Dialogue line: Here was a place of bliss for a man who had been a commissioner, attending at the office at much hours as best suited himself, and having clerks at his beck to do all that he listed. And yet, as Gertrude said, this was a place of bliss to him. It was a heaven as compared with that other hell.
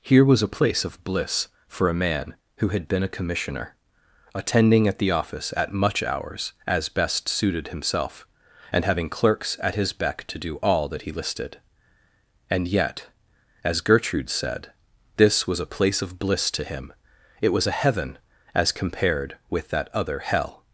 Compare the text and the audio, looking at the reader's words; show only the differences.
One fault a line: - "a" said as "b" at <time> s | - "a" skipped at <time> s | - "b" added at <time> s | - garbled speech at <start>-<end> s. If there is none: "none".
none